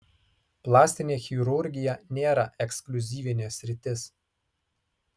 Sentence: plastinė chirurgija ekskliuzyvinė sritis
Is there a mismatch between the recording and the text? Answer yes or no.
yes